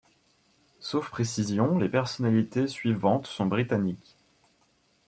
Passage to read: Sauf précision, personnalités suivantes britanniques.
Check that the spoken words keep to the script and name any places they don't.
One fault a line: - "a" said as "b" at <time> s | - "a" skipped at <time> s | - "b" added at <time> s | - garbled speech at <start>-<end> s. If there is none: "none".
- "les" added at 1.8 s
- "sont" added at 3.3 s